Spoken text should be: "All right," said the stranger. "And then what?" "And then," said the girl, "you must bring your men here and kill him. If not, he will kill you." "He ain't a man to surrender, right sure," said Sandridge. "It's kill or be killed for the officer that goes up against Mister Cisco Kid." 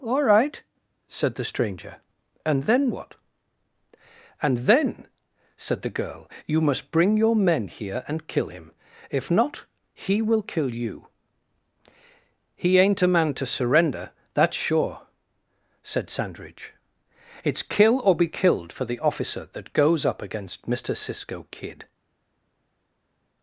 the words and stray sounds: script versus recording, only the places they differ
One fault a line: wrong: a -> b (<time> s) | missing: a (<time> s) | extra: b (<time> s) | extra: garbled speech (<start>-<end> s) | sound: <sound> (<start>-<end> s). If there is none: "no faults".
wrong: right -> that's (14.3 s)